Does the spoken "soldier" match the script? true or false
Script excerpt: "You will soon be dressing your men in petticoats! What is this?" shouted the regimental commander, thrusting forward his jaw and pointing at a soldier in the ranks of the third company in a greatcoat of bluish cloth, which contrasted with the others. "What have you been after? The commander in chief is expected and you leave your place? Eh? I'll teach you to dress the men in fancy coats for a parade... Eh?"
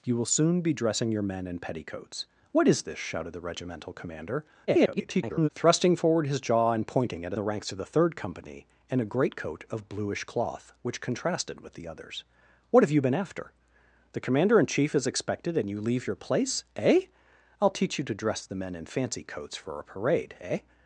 false